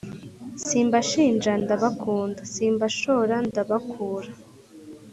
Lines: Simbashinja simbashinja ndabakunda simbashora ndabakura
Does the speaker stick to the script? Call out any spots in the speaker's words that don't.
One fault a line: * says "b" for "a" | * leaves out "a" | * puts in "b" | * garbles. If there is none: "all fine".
* leaves out "simbashinja"